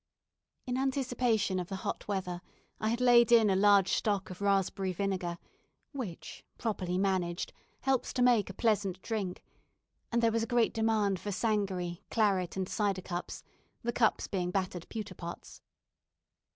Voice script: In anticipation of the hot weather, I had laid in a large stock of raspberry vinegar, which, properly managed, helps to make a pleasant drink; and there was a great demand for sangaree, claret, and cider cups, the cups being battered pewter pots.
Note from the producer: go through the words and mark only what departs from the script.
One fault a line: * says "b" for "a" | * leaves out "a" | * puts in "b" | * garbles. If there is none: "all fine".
all fine